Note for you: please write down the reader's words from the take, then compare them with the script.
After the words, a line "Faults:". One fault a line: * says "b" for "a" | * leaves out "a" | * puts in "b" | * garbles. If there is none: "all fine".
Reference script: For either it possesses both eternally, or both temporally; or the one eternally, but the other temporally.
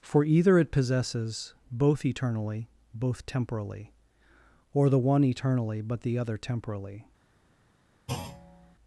For either it possesses both eternally, both temporally; or the one eternally, but the other temporally.
Faults:
* leaves out "or"